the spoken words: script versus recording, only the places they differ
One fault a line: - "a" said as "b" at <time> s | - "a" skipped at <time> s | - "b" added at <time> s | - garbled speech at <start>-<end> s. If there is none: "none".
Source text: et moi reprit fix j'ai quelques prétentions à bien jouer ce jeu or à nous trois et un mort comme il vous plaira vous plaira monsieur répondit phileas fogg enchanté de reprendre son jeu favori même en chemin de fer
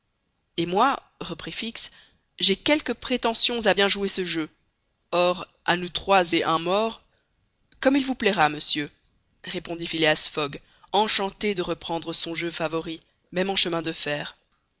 - "vous plaira" skipped at 8.5 s